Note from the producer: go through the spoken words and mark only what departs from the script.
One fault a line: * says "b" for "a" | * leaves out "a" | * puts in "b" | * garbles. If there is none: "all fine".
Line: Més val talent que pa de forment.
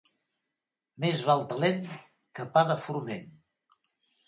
all fine